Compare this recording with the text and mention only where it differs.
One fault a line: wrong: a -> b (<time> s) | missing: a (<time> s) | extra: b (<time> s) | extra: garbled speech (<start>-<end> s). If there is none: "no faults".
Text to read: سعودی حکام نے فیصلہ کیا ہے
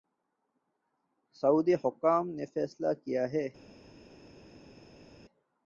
no faults